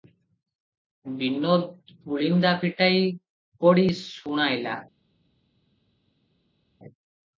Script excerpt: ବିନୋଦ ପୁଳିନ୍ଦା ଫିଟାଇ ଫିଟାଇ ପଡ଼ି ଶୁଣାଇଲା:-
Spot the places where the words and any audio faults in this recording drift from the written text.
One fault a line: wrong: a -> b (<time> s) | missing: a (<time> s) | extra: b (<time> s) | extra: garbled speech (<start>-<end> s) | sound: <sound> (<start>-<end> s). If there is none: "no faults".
missing: ଫିଟାଇ (3.0 s)